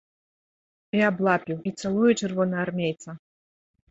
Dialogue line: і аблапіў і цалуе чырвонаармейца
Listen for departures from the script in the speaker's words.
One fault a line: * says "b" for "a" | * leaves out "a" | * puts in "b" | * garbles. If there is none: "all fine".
all fine